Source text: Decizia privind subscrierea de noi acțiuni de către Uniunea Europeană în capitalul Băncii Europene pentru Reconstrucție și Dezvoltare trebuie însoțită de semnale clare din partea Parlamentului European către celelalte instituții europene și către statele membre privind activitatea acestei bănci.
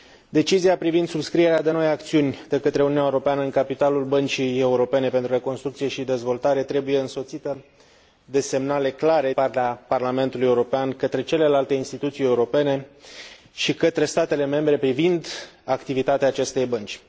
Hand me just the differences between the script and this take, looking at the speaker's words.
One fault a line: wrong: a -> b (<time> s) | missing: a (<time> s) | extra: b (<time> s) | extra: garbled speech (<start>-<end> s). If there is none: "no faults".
missing: din (9.3 s)